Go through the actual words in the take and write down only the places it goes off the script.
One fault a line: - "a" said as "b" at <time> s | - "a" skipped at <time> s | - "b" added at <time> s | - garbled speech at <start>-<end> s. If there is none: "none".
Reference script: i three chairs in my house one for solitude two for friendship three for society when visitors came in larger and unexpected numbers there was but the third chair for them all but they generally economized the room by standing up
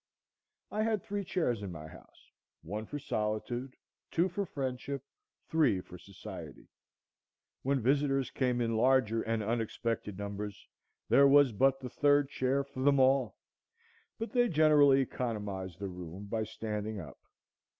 - "had" added at 0.8 s